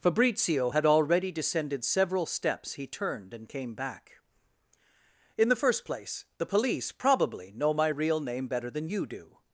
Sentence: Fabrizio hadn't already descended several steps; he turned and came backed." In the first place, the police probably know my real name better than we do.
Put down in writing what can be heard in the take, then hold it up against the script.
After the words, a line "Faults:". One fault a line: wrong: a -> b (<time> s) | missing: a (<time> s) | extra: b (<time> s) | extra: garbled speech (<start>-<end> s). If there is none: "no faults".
Fabrizio had already descended several steps; he turned and came back." In the first place, the police probably know my real name better than you do.
Faults:
wrong: hadn't -> had (0.7 s)
wrong: backed -> back (3.7 s)
wrong: we -> you (8.9 s)